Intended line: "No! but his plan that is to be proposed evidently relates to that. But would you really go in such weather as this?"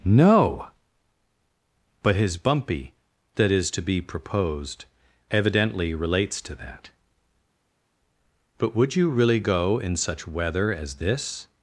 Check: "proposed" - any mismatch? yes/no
no